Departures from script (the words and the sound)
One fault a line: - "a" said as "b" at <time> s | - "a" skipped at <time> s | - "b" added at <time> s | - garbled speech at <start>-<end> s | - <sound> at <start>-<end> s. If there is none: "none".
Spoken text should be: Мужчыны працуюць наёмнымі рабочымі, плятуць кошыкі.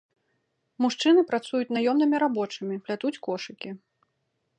none